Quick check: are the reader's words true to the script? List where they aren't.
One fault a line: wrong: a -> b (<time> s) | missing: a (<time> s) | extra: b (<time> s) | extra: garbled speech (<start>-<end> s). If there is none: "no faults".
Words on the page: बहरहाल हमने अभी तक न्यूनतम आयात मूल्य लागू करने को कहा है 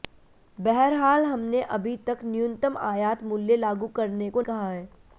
no faults